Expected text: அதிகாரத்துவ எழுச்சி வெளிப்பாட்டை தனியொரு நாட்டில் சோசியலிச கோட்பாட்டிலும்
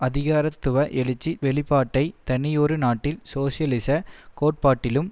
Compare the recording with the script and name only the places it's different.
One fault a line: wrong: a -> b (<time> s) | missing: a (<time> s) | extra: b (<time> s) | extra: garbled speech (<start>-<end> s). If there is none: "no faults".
no faults